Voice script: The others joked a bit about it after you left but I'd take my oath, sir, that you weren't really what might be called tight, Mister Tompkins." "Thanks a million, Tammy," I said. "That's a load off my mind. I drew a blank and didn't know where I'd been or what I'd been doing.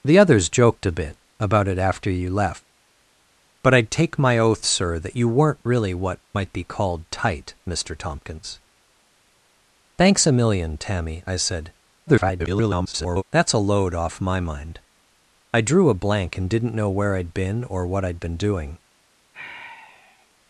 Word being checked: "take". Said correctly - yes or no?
yes